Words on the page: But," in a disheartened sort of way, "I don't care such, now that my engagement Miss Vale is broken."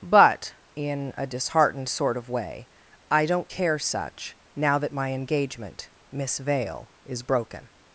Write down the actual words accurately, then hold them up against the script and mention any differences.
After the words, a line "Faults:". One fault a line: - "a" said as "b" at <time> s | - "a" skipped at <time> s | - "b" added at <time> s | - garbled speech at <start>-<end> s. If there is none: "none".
But," in a disheartened sort of way, "I don't care such, now that my engagement Miss Vale is broken."
Faults:
none